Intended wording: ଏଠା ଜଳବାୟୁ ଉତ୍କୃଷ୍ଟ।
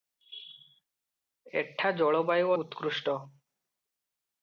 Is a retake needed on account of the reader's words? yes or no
no